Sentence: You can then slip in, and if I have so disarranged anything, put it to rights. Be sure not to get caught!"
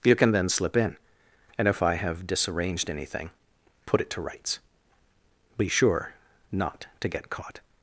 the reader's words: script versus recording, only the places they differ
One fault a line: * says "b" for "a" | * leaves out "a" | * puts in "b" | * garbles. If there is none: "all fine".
* leaves out "so"